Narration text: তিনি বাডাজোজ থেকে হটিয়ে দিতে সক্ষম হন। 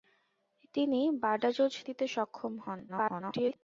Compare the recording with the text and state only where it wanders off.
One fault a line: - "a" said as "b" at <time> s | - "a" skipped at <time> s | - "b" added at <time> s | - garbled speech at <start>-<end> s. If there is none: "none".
- "থেকে হটিয়ে" skipped at 1.7 s
- garbled speech at 2.9-3.6 s